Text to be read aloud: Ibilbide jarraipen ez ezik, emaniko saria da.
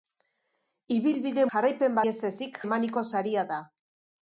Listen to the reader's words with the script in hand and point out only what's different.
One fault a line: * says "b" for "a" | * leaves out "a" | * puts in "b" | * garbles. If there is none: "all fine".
all fine